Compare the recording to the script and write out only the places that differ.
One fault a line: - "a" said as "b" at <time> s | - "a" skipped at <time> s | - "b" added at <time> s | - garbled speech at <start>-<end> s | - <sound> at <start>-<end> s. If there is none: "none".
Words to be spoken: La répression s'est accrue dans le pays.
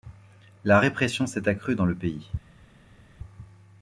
none